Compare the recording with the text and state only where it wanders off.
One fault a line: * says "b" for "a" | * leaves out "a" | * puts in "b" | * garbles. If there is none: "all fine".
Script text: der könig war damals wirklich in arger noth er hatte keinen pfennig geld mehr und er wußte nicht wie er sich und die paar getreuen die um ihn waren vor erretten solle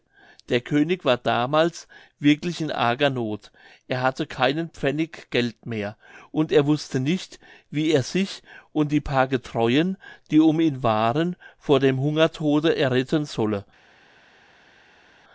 * puts in "dem hungertode"